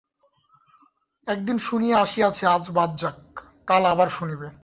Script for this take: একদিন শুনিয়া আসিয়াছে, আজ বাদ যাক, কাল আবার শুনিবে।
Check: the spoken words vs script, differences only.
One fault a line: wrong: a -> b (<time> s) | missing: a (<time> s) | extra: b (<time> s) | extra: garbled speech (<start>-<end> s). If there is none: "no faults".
no faults